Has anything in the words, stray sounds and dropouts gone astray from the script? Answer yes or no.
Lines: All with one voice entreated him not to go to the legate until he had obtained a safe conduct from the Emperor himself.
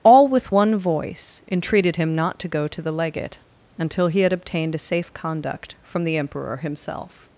no